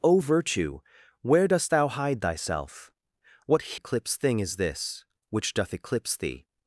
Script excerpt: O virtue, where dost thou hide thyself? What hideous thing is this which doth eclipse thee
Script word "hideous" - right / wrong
wrong